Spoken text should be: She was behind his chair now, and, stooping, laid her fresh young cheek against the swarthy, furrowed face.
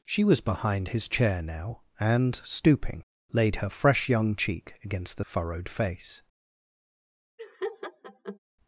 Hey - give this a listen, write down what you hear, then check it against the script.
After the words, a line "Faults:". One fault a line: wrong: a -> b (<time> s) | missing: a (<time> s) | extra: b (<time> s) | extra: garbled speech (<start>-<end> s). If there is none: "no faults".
She was behind his chair now, and, stooping, laid her fresh young cheek against the furrowed face.
Faults:
missing: swarthy (5.2 s)